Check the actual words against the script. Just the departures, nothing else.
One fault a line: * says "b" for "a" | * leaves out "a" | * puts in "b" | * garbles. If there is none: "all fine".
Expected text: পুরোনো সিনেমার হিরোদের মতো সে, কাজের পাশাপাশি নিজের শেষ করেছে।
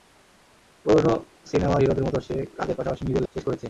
all fine